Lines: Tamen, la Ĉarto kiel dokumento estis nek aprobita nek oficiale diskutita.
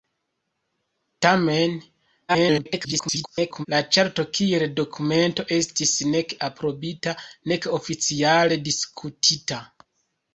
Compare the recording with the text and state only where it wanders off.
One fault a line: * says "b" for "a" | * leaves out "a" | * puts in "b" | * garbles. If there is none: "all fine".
* garbles